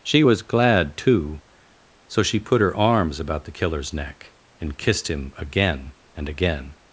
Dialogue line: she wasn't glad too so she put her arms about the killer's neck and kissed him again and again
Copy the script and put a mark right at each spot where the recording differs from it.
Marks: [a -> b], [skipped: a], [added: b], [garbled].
she [wasn't -> was] glad too so she put her arms about the killer's neck and kissed him again and again